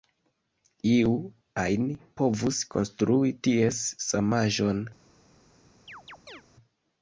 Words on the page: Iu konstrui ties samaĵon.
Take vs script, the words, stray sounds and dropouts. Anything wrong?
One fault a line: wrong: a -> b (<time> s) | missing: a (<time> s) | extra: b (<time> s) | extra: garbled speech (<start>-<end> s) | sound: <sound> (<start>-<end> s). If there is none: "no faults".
extra: ajn povus (1.6 s)
sound: chirp (5.9-6.4 s)